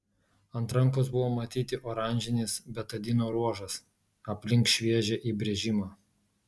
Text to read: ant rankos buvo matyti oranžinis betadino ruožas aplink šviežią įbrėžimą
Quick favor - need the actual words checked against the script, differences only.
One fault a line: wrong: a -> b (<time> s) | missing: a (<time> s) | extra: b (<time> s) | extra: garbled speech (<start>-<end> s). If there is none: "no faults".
no faults